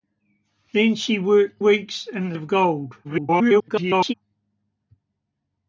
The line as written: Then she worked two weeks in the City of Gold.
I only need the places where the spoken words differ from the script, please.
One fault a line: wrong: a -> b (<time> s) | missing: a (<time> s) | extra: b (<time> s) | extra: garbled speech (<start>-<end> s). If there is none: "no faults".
missing: two (1.6 s)
missing: City (2.4 s)
extra: garbled speech (3.0-4.1 s)